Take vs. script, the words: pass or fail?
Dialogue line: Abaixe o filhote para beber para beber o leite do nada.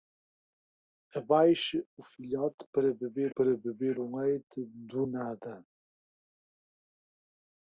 pass